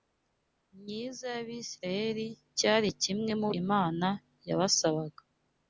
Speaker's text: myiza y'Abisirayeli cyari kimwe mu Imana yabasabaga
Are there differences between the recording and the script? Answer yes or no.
no